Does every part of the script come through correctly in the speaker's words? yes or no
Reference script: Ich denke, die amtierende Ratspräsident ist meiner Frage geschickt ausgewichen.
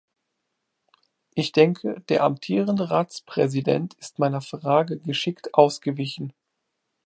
no